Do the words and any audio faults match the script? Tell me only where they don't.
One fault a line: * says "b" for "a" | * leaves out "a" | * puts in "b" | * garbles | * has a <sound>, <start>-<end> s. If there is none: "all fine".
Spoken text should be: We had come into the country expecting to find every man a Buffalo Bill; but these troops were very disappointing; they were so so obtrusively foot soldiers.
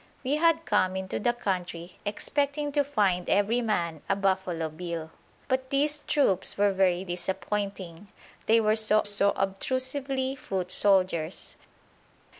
all fine